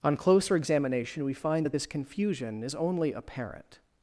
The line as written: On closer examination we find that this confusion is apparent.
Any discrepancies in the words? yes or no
yes